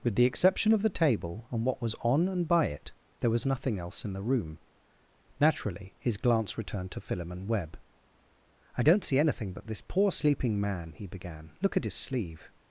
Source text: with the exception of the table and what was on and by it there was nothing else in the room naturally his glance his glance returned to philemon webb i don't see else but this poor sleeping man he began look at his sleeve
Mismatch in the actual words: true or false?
true